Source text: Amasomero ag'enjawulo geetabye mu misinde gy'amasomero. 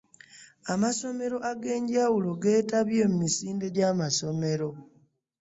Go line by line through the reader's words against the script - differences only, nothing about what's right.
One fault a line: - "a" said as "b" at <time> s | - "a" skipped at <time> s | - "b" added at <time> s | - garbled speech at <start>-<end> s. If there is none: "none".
none